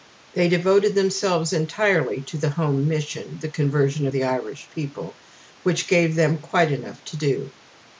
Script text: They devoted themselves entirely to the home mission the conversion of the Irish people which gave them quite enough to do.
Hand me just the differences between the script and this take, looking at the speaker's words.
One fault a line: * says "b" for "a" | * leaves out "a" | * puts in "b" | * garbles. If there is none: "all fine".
all fine